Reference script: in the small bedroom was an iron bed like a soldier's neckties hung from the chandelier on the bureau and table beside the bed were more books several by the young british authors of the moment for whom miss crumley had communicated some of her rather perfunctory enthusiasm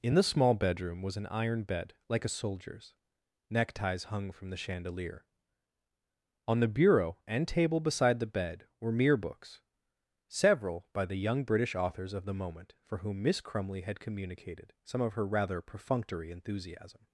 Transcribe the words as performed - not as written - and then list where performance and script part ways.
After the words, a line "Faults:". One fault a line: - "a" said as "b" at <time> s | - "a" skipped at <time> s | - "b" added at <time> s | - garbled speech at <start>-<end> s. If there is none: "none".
in the small bedroom was an iron bed like a soldier's neckties hung from the chandelier on the bureau and table beside the bed were mere books several by the young british authors of the moment for whom miss crumley had communicated some of her rather perfunctory enthusiasm
Faults:
- "more" said as "mere" at 9.0 s